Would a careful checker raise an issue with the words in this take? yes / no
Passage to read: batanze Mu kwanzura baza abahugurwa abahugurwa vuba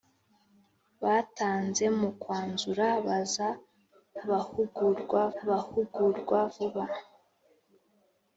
no